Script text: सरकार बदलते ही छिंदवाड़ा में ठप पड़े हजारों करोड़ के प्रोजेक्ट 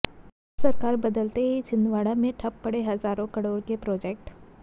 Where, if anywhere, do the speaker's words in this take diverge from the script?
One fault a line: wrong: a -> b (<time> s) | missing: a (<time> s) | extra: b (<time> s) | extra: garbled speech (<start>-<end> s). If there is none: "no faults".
no faults